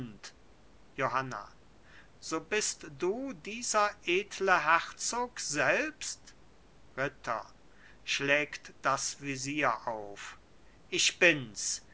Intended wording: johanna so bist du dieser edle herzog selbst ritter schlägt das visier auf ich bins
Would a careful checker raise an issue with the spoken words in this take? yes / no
no